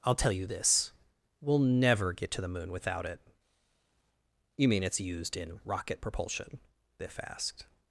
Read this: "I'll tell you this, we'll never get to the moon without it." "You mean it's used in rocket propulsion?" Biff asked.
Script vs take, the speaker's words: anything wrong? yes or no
no